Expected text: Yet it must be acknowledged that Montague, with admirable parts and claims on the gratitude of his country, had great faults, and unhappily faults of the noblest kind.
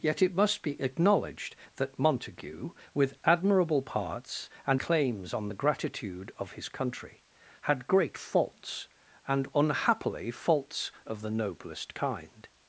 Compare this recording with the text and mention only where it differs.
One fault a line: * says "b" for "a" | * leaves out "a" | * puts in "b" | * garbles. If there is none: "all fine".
all fine